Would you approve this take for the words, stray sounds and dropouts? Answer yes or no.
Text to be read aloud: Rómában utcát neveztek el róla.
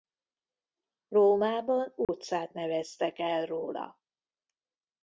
no